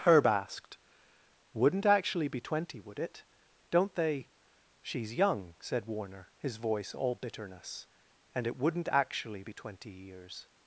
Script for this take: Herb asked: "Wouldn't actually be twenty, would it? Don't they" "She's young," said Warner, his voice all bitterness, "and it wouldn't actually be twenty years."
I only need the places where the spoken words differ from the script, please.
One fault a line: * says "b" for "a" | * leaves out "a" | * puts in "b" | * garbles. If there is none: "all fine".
all fine